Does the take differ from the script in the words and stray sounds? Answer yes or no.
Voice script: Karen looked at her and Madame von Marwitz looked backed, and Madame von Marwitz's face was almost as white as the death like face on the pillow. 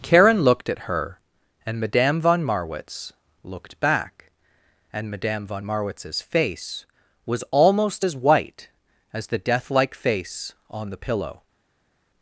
yes